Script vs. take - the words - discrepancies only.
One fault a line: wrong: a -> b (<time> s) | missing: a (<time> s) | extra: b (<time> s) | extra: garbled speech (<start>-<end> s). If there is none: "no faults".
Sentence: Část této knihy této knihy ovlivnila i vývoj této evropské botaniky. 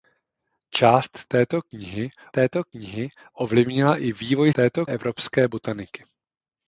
no faults